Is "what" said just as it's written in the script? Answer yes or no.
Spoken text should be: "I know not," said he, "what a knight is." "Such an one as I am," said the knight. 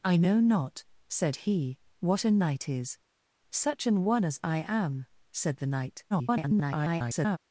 yes